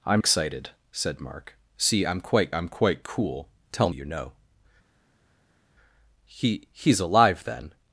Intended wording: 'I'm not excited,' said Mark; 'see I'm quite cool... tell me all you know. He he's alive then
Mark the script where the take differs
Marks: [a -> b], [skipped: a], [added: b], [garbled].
'I'm [skipped: not] excited,' said Mark; 'see I'm quite [added: I'm quite] cool... tell [skipped: me all] you know. He he's alive then